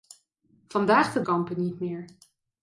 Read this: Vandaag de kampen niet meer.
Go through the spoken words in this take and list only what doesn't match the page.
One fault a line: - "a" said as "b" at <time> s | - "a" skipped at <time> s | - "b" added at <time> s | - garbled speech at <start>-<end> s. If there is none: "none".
none